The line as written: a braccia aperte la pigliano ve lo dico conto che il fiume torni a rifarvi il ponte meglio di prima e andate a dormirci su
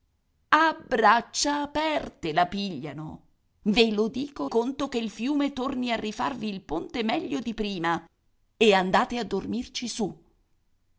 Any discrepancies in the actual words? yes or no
no